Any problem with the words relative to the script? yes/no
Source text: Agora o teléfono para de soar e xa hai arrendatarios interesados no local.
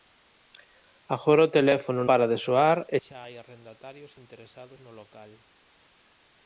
no